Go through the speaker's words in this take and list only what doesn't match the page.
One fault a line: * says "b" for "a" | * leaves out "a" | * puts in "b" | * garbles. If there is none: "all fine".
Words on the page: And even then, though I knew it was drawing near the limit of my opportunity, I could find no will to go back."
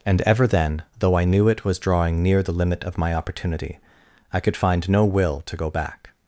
* says "ever" for "even"